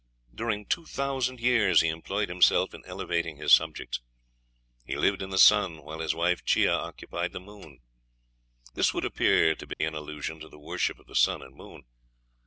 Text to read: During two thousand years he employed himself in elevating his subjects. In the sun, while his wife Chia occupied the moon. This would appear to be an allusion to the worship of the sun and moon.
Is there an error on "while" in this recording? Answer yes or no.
no